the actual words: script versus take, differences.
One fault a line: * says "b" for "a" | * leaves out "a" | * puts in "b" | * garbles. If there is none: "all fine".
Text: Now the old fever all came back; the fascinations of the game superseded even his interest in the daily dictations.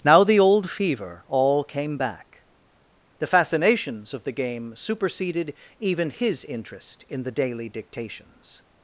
all fine